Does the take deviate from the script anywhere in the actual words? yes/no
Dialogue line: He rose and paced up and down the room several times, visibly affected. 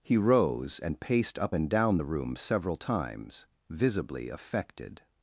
no